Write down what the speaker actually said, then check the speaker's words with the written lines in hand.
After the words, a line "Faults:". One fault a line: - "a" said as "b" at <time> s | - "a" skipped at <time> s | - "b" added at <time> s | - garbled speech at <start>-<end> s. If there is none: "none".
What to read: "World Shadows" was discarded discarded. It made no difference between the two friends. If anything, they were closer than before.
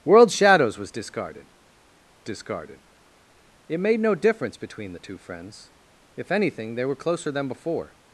"World Shadows" was discarded discarded. It made no difference between the two friends. If anything, they were closer than before.
Faults:
none